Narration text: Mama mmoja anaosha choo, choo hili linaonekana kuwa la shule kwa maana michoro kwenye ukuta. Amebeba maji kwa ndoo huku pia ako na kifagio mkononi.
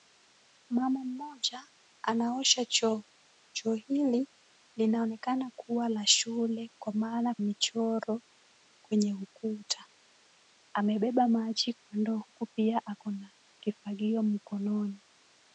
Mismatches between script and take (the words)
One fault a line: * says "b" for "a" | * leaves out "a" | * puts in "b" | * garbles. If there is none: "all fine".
all fine